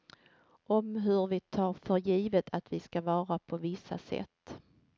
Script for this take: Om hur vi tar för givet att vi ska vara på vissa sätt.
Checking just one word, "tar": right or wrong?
right